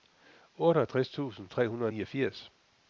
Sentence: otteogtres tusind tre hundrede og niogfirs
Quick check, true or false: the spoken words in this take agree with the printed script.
true